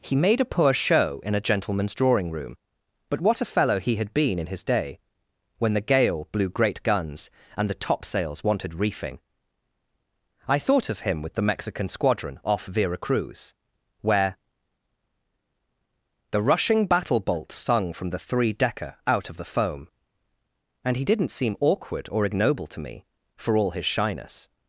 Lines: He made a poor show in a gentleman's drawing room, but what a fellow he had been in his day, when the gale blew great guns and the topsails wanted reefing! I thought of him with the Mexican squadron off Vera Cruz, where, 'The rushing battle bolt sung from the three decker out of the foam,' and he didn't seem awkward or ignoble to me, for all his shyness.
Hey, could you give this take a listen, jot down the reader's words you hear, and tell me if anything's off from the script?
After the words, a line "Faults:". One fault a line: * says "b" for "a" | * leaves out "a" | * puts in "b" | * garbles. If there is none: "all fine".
He made a poor show in a gentleman's drawing room, but what a fellow he had been in his day, when the gale blew great guns and the topsails wanted reefing! I thought of him with the Mexican squadron off Vera Cruz, where, 'The rushing battle bolt sung from the three decker out of the foam,' and he didn't seem awkward or ignoble to me, for all his shyness.
Faults:
all fine